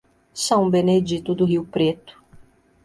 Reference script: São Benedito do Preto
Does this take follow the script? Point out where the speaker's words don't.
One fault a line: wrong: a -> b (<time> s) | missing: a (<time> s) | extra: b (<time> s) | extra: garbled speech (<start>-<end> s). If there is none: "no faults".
extra: Rio (1.4 s)